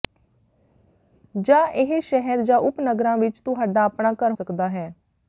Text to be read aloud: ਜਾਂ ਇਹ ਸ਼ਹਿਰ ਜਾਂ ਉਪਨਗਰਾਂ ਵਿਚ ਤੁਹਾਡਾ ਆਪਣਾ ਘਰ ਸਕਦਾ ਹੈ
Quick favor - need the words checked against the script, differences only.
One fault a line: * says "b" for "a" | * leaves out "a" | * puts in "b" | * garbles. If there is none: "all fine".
all fine